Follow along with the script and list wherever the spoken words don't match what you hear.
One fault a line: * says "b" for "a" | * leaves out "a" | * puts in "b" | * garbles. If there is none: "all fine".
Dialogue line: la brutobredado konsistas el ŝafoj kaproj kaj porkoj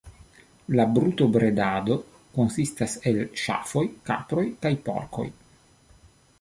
all fine